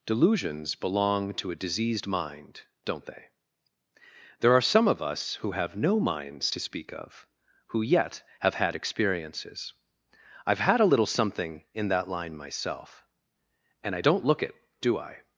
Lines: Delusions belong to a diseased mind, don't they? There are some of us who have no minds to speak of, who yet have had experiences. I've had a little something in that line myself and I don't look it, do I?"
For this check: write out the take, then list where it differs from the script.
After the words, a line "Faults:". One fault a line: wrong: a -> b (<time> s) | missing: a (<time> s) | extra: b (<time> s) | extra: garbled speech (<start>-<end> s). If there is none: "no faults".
Delusions belong to a diseased mind, don't they? There are some of us who have no minds to speak of, who yet have had experiences. I've had a little something in that line myself and I don't look it, do I?"
Faults:
no faults